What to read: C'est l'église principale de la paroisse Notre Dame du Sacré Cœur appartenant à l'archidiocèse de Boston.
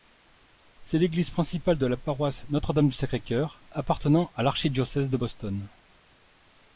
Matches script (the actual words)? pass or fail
pass